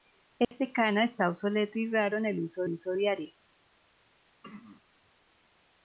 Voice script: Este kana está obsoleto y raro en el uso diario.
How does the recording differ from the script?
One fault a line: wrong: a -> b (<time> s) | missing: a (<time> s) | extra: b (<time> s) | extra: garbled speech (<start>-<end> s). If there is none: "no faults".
extra: uso (2.7 s)